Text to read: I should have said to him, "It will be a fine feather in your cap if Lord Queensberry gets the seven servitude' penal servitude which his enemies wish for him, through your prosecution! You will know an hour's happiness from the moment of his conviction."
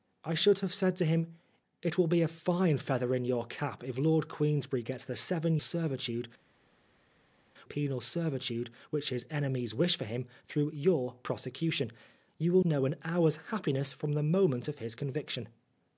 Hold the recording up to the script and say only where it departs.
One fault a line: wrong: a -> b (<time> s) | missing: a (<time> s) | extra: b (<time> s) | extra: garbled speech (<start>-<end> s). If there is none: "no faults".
no faults